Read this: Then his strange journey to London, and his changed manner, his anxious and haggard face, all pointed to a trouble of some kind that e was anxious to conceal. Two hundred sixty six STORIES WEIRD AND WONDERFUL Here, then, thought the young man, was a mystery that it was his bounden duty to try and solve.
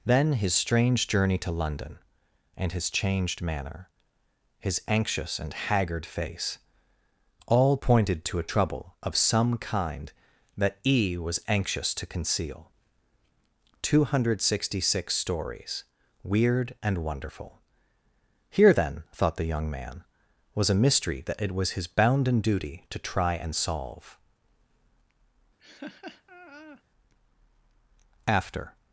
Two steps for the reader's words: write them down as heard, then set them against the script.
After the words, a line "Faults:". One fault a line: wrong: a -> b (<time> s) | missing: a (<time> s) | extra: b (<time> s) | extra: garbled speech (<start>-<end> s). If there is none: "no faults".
Then his strange journey to London, and his changed manner, his anxious and haggard face, all pointed to a trouble of some kind that e was anxious to conceal. Two hundred sixty six STORIES WEIRD AND WONDERFUL Here, then, thought the young man, was a mystery that it was his bounden duty to try and solve. After
Faults:
extra: After (28.3 s)